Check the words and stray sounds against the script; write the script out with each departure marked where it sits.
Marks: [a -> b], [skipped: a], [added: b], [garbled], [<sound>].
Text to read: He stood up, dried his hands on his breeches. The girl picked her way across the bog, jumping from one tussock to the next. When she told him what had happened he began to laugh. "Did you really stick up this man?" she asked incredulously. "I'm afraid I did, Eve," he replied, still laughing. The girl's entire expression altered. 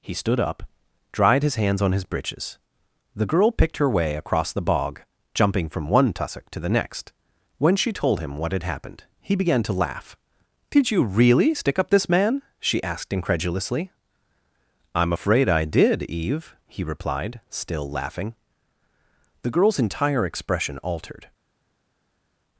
He stood up, dried his hands on his breeches. The girl picked her way across the bog, jumping from one tussock to the next. When she told him what had happened he began to laugh. "Did you really stick up this man?" she asked incredulously. "I'm afraid I did, Eve," he replied, still laughing. The girl's entire expression altered.